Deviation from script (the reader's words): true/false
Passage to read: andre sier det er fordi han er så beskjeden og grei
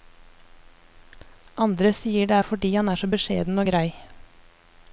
false